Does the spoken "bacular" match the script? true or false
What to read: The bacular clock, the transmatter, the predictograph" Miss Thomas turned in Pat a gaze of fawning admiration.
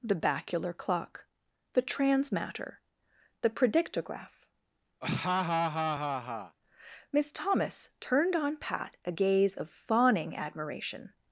true